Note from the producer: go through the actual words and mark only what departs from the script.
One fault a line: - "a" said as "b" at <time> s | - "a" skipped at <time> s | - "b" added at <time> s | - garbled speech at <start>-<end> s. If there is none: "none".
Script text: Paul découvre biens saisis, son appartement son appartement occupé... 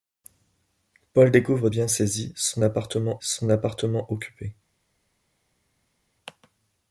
none